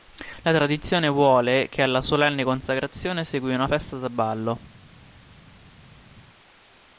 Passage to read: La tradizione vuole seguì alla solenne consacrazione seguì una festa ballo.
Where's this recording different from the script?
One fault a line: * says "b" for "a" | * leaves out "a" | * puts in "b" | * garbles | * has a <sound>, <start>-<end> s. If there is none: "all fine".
* says "che" for "seguì"
* puts in "da"